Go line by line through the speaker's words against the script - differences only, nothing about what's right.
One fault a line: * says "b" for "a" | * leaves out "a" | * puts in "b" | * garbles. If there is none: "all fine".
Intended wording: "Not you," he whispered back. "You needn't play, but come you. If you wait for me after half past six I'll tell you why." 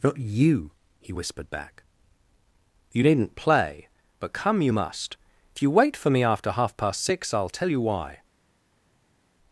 * puts in "must"